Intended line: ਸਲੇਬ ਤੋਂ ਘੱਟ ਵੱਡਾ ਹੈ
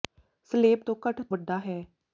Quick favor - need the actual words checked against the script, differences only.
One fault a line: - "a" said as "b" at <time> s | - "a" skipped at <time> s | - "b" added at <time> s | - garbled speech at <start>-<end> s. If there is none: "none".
none